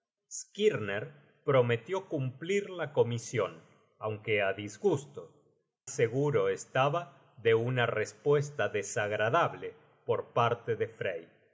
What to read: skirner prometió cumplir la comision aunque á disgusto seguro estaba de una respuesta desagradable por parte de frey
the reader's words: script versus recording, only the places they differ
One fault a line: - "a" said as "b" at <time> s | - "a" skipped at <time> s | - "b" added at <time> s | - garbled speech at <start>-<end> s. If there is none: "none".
none